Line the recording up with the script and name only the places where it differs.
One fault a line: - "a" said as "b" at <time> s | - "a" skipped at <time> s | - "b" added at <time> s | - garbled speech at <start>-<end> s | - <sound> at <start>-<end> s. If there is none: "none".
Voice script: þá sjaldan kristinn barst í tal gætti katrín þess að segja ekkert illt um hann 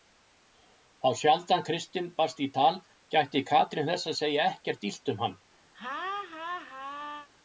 - laugh at 5.7-7.3 s